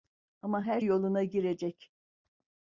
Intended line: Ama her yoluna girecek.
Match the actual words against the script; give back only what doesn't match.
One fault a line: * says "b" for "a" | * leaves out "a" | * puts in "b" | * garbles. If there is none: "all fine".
all fine